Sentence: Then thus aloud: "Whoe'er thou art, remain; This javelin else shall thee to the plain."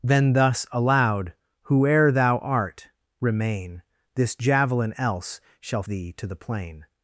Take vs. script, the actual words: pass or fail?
pass